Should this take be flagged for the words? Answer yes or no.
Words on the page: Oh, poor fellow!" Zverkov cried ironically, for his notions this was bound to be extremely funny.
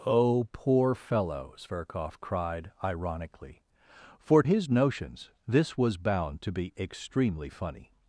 no